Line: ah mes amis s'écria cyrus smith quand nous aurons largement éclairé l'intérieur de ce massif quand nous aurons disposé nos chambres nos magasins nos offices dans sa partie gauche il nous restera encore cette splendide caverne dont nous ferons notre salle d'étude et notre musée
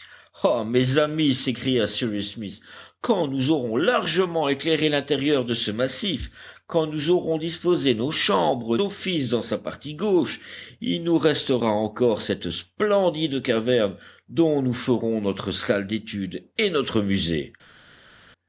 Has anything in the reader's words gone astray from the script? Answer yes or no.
yes